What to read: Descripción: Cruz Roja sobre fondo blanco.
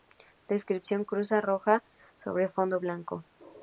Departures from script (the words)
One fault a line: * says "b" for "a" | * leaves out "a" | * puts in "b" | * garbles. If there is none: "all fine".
all fine